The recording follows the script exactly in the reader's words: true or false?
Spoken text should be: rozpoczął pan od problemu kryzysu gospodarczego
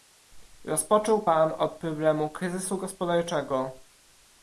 true